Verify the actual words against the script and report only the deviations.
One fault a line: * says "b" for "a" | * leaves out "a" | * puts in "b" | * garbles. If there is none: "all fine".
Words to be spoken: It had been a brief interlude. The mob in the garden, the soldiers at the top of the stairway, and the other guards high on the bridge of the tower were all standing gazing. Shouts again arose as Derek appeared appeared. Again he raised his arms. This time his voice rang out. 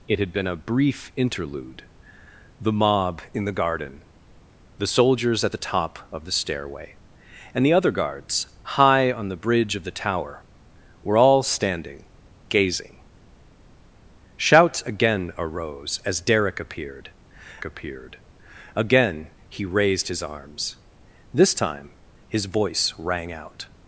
all fine